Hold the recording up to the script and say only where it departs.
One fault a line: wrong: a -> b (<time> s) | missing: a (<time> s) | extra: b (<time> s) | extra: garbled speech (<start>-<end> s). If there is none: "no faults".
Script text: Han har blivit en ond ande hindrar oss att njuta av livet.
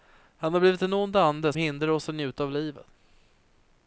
no faults